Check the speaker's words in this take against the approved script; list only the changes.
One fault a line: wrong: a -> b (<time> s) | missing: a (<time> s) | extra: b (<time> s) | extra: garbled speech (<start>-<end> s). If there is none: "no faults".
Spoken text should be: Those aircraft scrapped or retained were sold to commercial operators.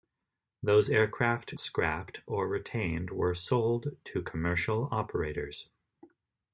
no faults